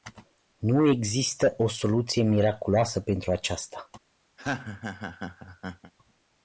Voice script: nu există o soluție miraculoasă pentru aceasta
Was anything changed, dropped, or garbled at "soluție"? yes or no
no